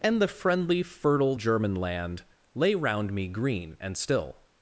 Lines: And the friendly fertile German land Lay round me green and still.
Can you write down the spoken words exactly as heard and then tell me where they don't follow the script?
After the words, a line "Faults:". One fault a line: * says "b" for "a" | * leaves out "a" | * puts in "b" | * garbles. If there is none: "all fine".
And the friendly fertile German land Lay round me green and still.
Faults:
all fine